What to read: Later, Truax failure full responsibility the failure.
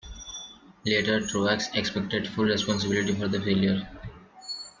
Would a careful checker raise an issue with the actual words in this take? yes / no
yes